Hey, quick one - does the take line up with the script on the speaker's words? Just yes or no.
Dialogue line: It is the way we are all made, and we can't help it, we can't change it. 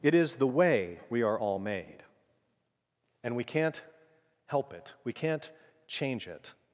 yes